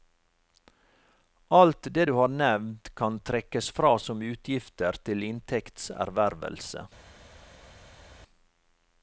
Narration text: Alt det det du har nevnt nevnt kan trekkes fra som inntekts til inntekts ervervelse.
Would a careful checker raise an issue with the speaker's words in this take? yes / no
yes